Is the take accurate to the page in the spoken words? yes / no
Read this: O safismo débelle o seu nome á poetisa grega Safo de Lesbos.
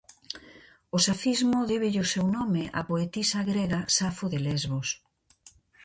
yes